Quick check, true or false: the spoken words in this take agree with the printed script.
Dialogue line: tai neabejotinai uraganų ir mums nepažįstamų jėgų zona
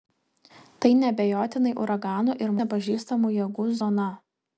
false